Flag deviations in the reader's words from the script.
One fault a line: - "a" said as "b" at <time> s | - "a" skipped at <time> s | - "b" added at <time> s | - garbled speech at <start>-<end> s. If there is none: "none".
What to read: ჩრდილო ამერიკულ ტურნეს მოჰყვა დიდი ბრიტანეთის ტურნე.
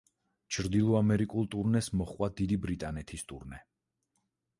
none